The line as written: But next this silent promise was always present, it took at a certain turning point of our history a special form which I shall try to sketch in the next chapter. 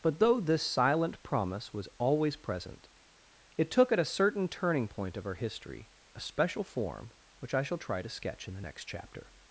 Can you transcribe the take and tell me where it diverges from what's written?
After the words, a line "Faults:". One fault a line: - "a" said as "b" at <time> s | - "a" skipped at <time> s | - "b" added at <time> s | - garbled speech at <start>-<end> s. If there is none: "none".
But though this silent promise was always present, it took at a certain turning point of our history a special form which I shall try to sketch in the next chapter.
Faults:
- "next" said as "though" at 0.2 s